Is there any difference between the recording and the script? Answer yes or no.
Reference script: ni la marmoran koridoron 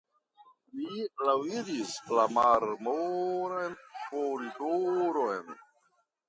yes